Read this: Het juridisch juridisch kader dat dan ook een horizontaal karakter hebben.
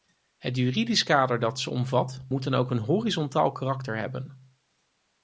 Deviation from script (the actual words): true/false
true